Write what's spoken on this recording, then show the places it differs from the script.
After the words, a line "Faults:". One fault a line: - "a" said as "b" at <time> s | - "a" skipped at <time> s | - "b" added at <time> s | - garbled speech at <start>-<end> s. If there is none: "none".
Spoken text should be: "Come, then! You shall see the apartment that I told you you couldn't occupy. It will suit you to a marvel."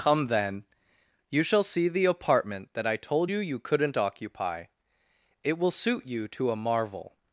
"Come, then! You shall see the apartment that I told you you couldn't occupy. It will suit you to a marvel."
Faults:
none